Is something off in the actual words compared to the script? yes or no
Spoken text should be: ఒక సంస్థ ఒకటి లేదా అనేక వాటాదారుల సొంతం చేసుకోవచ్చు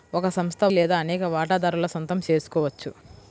yes